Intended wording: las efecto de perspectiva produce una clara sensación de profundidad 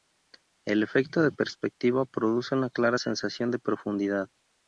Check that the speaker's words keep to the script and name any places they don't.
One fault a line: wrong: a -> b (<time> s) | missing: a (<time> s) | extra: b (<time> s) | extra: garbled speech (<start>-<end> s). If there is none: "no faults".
wrong: las -> el (0.7 s)